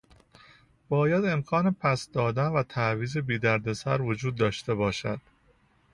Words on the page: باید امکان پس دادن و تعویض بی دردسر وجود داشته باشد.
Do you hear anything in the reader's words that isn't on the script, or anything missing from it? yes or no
no